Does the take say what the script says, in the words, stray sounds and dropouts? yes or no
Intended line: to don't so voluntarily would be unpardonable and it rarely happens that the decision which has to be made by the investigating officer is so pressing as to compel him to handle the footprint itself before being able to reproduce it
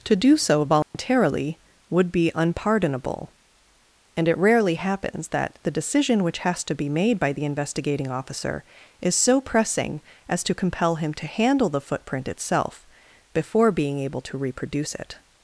no